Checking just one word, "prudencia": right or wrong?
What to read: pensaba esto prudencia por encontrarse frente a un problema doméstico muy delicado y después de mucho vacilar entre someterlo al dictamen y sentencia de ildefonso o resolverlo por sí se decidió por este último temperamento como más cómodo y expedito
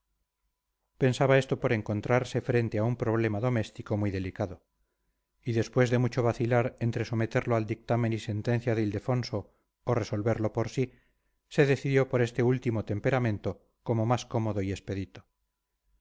wrong